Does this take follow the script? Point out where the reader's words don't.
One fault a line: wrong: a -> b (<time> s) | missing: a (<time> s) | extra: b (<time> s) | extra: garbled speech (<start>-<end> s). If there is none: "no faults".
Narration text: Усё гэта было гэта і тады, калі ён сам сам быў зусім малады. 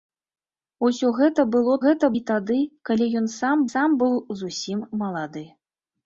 no faults